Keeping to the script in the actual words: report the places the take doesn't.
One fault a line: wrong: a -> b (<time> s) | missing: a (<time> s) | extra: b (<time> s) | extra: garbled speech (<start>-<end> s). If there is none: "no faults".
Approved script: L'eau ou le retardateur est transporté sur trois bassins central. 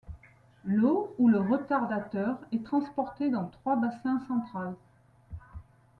wrong: sur -> dans (3.3 s)